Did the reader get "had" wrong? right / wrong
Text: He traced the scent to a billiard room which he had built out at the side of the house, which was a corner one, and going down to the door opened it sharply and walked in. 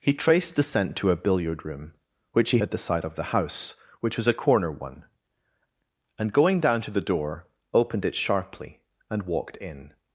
wrong